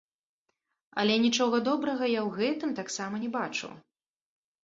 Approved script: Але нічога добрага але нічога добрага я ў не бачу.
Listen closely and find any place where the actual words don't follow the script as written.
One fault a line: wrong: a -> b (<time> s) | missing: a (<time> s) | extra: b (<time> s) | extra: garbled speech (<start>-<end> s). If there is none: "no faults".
wrong: але нічога добрага я ў -> я ў гэтым таксама (2.1 s)